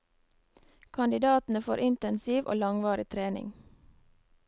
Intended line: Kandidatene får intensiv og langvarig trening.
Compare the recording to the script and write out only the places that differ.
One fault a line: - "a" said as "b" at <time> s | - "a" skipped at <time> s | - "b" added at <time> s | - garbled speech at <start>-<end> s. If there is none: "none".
none